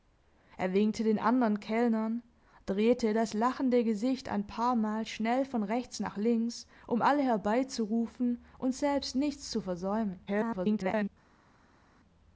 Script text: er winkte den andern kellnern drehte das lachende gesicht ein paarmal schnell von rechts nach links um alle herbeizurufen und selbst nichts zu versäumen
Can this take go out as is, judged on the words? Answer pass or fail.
fail